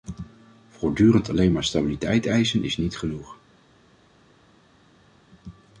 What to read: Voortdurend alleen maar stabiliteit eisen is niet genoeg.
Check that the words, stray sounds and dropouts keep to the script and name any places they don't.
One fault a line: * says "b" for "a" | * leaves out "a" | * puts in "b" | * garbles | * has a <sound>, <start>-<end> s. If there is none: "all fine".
all fine